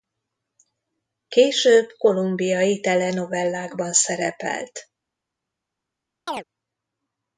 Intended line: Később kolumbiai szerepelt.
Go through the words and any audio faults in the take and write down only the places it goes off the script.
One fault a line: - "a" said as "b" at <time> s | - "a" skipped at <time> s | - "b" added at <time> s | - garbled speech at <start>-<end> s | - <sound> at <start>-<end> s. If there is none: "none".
- "telenovellákban" added at 2.8 s
- chirp at 6.3-6.4 s